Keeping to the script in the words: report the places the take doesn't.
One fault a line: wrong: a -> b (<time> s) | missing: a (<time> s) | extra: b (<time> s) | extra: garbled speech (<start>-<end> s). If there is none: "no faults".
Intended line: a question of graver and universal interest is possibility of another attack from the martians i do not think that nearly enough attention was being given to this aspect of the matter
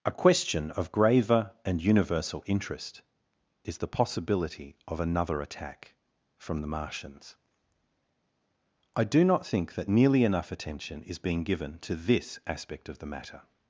extra: the (3.8 s)
wrong: was -> is (11.0 s)